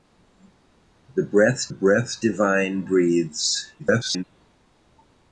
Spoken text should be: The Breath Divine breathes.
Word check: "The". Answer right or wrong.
right